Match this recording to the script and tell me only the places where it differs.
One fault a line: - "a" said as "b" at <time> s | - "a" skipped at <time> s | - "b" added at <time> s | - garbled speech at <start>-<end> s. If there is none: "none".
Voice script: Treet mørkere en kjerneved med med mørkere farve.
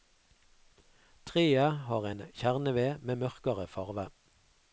- "mørkere" said as "har" at 1.9 s
- "med" skipped at 3.2 s